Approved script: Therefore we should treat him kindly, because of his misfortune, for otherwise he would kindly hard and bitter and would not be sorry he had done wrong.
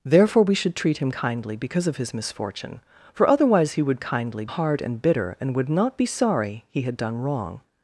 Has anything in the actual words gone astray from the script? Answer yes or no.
no